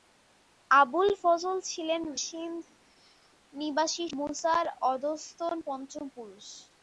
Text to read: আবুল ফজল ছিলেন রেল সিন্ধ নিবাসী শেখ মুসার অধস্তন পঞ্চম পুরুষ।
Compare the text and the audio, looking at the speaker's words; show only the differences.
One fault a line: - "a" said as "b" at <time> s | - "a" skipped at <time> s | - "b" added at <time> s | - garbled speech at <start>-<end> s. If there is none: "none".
- "রেল" skipped at 2.0 s
- "শেখ" skipped at 4.1 s